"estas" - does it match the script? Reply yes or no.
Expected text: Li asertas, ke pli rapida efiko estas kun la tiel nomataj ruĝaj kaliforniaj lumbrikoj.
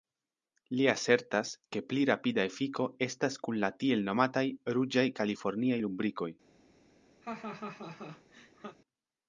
yes